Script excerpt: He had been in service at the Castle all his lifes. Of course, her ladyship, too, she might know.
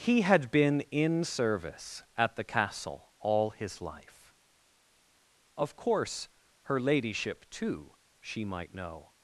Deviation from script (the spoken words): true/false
true